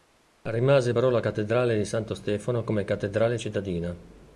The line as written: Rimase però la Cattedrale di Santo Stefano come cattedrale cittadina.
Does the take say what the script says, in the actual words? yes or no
yes